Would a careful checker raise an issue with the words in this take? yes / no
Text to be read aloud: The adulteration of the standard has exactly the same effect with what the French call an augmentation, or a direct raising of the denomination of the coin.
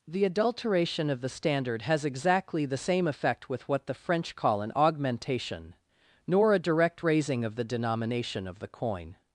yes